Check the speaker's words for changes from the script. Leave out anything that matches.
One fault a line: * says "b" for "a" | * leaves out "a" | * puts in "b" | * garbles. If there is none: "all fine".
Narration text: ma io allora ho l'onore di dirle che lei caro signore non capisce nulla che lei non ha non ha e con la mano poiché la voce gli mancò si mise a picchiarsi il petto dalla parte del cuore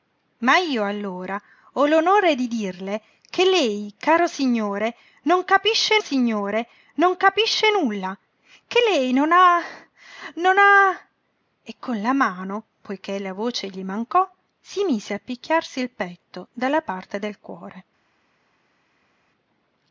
* puts in "signore non capisce"